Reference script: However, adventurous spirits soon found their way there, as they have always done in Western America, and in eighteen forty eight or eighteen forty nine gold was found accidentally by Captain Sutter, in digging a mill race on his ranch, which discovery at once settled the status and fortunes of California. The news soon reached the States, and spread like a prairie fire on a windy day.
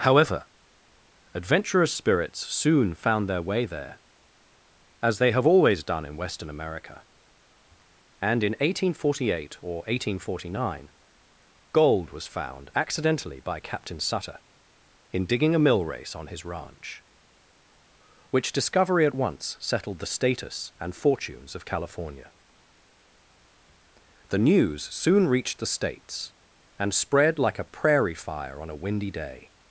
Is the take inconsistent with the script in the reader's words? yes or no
no